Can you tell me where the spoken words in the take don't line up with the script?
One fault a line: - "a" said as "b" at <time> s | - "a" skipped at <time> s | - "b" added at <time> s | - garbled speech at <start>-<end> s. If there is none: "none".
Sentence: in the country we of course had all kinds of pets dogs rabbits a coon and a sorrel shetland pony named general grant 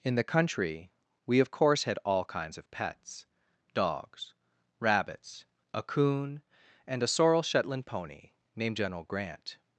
none